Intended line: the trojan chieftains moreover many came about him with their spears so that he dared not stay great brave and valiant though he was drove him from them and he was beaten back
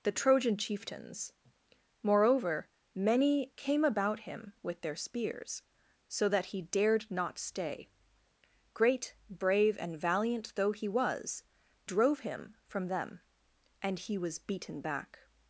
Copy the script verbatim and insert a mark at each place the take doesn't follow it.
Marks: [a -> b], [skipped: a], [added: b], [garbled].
the trojan chieftains moreover many came about him with their spears so that he dared not stay great brave and valiant though he was drove him from them and he was beaten back